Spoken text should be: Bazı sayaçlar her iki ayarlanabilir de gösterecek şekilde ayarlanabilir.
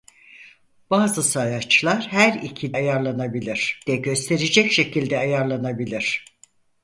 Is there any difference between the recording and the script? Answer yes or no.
no